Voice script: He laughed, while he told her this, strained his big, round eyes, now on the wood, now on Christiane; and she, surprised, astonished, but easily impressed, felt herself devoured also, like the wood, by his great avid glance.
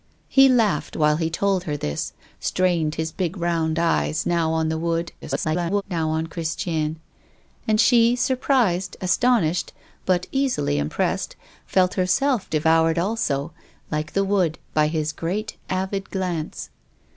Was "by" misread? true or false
false